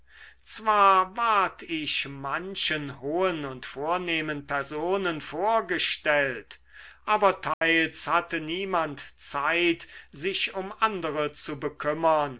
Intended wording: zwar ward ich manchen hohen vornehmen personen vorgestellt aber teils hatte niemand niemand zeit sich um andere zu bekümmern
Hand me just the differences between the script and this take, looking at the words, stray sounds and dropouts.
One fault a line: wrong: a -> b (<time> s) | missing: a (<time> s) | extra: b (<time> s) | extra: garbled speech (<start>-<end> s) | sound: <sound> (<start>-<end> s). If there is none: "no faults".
extra: und (3.5 s)
sound: dropout (7.5-7.6 s)
missing: niemand (9.1 s)